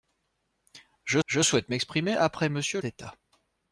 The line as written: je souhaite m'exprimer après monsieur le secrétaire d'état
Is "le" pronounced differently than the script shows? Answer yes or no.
yes